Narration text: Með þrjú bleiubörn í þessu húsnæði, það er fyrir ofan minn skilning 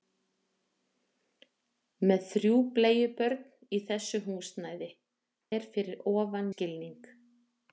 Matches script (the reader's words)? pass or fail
fail